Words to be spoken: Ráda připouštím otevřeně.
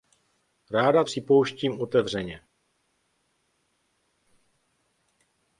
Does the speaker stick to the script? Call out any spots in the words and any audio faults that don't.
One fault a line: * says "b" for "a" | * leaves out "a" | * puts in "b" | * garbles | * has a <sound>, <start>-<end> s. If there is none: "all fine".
all fine